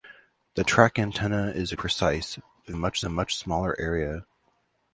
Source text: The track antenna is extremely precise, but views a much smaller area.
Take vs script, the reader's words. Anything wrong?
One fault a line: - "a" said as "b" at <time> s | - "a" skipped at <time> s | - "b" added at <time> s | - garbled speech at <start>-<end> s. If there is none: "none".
- "extremely" skipped at 1.7 s
- "views" said as "much" at 2.7 s